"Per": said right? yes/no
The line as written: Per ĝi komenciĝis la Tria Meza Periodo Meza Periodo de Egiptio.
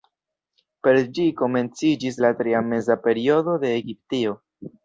yes